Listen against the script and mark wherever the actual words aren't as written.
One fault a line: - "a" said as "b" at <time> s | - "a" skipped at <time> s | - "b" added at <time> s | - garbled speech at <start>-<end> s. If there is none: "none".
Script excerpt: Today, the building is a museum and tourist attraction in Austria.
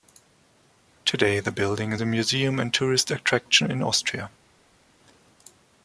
none